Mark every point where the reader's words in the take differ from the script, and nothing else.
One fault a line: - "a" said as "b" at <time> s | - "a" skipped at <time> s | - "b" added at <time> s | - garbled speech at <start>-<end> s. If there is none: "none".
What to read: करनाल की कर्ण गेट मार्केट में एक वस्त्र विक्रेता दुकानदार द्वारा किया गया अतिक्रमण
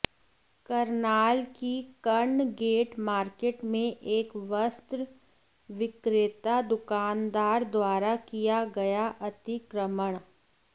none